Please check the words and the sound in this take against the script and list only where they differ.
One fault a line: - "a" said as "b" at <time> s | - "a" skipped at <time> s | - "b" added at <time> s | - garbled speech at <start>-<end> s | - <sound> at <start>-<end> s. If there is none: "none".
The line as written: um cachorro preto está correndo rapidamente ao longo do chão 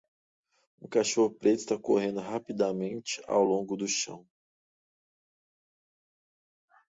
none